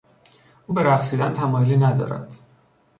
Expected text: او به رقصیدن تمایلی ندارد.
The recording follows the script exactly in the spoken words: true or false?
true